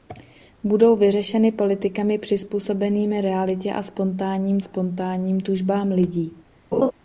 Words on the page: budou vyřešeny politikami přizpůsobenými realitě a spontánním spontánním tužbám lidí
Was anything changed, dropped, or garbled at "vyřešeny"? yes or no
no